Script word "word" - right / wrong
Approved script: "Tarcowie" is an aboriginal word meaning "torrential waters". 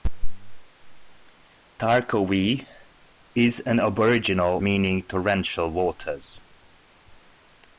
wrong